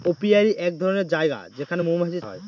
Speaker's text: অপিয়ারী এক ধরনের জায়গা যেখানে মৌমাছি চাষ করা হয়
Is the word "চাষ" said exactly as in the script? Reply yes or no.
no